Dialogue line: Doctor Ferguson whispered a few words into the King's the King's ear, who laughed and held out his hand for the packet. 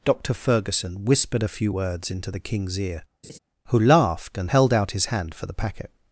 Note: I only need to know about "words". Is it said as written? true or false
true